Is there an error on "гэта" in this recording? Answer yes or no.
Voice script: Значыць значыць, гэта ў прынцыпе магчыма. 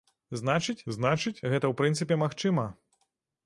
no